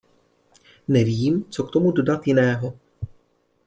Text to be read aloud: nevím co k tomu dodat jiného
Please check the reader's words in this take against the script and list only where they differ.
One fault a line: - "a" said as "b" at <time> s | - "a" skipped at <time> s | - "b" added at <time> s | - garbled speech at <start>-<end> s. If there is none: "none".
none